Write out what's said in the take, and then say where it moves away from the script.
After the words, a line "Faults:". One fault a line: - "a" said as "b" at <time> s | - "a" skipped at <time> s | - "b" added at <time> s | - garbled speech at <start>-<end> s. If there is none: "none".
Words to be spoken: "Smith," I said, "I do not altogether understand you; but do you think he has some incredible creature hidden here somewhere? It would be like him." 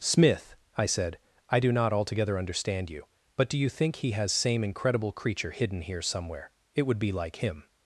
"Smith," I said, "I do not altogether understand you; but do you think he has same incredible creature hidden here somewhere? It would be like him."
Faults:
- "some" said as "same" at 4.3 s